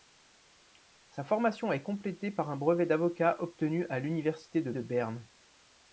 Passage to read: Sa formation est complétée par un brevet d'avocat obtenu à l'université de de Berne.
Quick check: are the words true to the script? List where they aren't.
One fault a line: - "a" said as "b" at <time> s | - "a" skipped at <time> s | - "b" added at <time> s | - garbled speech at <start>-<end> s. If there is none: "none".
none